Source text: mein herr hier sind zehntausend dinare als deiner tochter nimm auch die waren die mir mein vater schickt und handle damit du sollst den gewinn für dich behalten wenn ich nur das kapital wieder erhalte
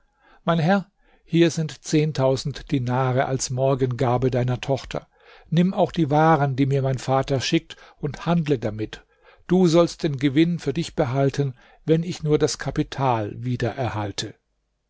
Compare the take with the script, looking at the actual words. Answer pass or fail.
fail